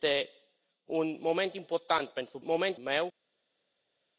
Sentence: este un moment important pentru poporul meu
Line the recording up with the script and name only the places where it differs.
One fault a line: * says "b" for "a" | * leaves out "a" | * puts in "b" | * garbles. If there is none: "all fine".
* says "moment" for "poporul"